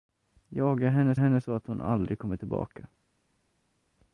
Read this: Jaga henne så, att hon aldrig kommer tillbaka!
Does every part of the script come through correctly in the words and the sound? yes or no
no